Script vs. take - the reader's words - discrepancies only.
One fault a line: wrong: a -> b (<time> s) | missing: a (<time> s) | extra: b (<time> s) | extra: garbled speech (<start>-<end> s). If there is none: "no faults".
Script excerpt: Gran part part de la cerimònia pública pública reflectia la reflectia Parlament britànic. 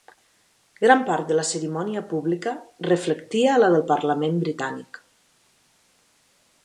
missing: part (1.3 s)
missing: pública (2.5 s)
wrong: reflectia -> del (3.8 s)